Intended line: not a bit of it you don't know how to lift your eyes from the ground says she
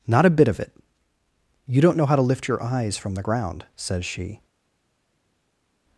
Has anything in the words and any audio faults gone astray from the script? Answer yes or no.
no